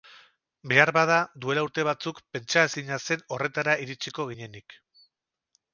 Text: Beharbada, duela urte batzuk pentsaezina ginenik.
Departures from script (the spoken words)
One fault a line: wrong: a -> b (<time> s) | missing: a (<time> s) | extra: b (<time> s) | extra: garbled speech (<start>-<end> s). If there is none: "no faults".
extra: zen horretara iritsiko (3.1 s)